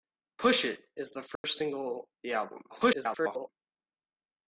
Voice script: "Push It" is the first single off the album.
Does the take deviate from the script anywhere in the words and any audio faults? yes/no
yes